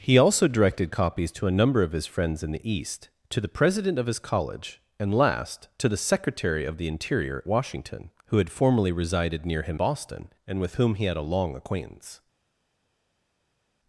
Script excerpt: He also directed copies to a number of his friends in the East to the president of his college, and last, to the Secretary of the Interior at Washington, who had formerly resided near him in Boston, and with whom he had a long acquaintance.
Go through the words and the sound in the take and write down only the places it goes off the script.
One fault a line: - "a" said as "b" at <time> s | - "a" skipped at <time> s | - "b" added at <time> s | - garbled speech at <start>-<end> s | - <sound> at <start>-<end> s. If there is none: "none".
- "at" skipped at 7.4 s
- "in" skipped at 9.8 s